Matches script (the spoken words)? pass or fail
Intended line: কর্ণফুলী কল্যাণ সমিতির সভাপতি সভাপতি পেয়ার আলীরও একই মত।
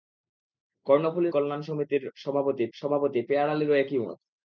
pass